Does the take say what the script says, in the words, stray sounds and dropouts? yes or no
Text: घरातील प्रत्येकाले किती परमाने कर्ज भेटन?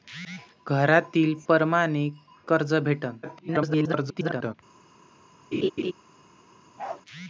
no